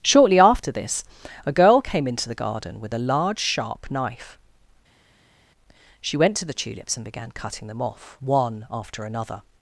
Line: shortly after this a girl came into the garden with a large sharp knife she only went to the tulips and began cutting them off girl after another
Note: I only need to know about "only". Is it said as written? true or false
false